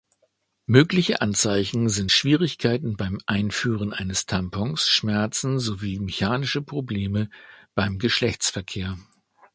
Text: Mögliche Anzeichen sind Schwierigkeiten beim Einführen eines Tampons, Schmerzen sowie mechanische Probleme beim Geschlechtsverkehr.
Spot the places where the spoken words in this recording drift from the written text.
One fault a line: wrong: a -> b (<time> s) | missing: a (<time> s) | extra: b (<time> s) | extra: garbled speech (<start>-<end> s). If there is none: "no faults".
no faults